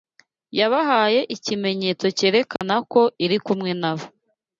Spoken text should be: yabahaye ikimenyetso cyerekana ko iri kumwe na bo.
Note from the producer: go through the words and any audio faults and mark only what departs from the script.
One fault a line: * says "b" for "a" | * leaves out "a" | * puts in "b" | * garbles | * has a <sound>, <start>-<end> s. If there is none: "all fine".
* has a dropout, 2.6-2.6 s